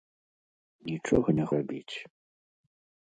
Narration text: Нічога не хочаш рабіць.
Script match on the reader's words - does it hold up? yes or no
no